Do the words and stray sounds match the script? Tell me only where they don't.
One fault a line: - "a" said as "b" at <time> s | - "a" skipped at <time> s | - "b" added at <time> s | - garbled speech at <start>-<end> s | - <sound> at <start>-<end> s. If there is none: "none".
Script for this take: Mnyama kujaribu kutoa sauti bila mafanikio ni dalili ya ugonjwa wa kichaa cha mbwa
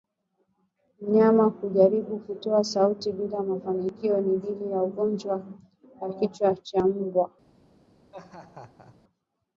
- laugh at 8.1-9.0 s